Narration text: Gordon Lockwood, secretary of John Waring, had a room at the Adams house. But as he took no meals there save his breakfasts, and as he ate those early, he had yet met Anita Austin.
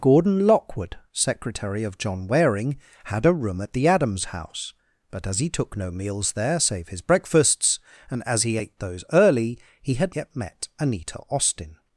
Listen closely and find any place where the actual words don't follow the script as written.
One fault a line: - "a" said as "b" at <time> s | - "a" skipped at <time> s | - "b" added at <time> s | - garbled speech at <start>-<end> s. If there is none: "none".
none